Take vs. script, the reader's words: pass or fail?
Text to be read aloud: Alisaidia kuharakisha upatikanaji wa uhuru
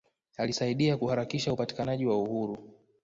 pass